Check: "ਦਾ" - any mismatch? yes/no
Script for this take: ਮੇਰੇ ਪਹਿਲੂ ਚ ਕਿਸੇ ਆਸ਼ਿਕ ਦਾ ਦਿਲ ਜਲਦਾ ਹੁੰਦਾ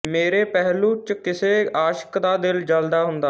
no